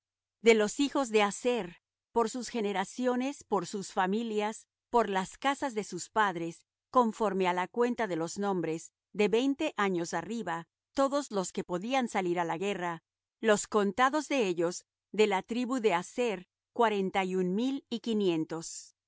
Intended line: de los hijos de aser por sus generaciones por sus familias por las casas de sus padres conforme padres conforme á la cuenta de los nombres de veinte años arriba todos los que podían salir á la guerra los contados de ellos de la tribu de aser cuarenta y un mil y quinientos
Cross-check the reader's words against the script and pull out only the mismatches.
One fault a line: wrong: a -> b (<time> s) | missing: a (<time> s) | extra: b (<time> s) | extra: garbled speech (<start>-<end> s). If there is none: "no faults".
missing: padres conforme (7.5 s)